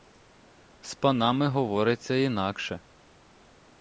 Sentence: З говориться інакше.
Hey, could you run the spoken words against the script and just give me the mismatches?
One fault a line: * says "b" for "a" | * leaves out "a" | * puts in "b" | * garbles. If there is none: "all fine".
* puts in "панами"